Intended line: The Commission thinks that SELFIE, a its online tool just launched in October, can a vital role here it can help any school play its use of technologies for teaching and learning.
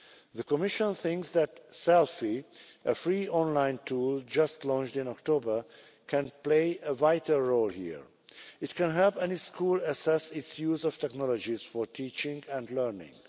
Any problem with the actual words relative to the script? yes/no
yes